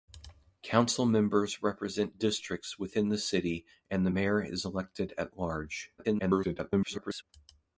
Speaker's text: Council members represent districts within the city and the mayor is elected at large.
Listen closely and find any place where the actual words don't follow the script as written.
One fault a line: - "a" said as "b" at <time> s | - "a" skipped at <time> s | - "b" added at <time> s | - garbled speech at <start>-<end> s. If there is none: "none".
- garbled speech at 6.0-7.2 s